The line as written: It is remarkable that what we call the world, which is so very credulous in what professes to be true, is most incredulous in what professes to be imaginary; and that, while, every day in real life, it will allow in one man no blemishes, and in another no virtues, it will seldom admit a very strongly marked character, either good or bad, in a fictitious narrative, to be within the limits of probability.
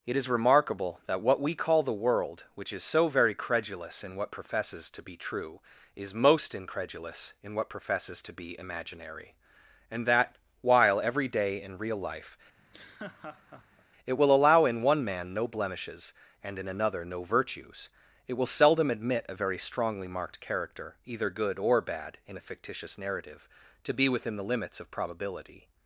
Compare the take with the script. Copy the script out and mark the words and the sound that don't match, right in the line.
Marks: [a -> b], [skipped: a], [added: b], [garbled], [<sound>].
It is remarkable that what we call the world, which is so very credulous in what professes to be true, is most incredulous in what professes to be imaginary; and that, while, every day in real life, [laugh] it will allow in one man no blemishes, and in another no virtues, it will seldom admit a very strongly marked character, either good or bad, in a fictitious narrative, to be within the limits of probability.